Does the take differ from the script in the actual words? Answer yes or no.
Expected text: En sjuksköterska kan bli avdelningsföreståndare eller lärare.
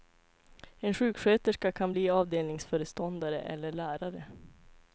no